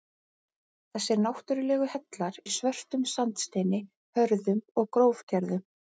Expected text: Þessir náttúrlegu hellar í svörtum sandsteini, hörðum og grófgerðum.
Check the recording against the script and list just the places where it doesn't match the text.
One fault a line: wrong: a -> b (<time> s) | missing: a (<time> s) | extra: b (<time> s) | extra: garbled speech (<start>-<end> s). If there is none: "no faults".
no faults